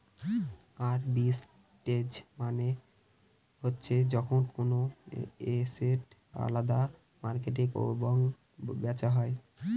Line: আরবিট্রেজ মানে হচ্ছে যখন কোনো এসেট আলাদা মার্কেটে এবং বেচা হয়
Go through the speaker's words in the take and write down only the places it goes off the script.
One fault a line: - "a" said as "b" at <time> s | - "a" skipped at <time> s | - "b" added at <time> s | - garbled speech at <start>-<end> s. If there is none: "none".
none